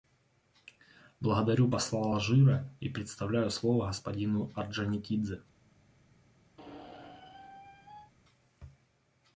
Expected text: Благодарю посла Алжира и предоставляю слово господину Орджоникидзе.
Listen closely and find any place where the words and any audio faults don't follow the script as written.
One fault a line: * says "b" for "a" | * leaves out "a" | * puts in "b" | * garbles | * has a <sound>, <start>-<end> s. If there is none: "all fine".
* has a squeak, 6.6-8.1 s